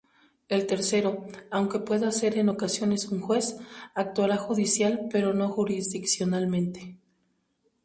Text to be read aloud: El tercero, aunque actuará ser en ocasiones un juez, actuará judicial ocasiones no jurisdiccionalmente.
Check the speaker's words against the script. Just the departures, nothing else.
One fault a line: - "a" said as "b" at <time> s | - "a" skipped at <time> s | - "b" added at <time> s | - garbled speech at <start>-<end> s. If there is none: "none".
- "actuará" said as "pueda" at 1.8 s
- "ocasiones" said as "pero" at 5.1 s